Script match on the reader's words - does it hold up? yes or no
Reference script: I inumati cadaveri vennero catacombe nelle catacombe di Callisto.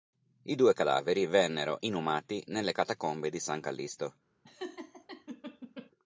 no